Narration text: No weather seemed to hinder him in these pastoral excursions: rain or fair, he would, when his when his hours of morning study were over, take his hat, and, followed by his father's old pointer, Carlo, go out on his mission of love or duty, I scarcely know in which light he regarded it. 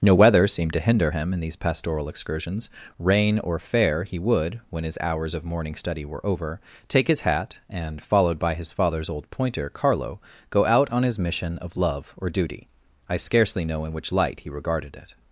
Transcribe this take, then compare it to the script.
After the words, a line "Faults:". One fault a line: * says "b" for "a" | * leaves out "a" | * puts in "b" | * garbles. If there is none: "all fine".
No weather seemed to hinder him in these pastoral excursions: rain or fair, he would, when his hours of morning study were over, take his hat, and, followed by his father's old pointer, Carlo, go out on his mission of love or duty, I scarcely know in which light he regarded it.
Faults:
* leaves out "when his"